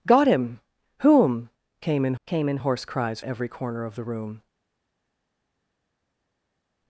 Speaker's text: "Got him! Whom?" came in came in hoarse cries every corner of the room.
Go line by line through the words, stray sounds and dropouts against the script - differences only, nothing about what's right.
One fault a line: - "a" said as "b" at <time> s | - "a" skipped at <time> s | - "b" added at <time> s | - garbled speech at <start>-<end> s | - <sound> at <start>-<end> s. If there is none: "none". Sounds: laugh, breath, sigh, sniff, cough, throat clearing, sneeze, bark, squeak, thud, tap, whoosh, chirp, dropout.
none